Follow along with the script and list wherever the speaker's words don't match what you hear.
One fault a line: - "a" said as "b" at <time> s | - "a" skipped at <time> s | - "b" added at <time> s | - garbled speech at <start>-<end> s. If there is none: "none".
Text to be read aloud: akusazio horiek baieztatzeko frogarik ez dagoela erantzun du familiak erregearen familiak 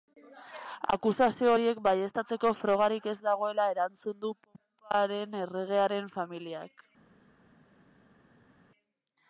- "familiak" said as "poparen" at 4.5 s